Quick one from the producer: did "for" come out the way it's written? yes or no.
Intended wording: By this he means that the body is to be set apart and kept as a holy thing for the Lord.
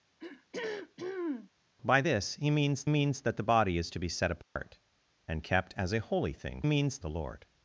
no